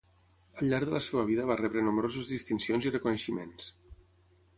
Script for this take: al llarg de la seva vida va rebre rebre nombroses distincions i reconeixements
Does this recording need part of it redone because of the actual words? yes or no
yes